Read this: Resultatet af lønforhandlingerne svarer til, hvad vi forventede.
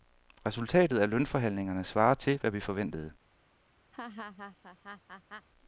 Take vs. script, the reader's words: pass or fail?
pass